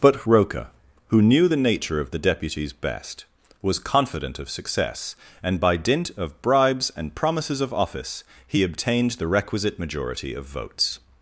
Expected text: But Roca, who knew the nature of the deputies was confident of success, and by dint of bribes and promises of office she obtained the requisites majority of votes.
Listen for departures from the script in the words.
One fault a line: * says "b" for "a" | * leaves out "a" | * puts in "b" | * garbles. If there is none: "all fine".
* puts in "best"
* says "he" for "she"
* says "requisite" for "requisites"